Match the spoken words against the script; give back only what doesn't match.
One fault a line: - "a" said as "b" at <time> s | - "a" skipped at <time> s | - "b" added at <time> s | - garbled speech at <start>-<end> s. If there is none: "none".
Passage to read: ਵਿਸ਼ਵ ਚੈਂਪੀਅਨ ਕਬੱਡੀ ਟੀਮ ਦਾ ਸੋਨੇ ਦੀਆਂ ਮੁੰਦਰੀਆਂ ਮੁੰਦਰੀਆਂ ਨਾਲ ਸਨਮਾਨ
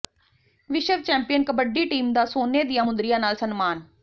- "ਮੁੰਦਰੀਆਂ" skipped at 3.2 s